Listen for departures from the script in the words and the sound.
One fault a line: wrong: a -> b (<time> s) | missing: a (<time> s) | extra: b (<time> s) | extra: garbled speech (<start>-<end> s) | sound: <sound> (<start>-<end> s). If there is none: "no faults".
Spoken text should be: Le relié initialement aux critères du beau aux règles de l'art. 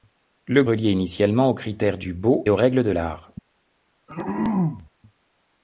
sound: throat clearing (4.1-4.9 s)